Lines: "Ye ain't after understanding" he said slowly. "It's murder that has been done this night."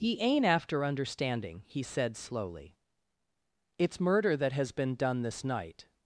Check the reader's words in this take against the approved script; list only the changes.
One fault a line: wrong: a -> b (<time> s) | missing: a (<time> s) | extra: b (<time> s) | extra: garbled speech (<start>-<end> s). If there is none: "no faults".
no faults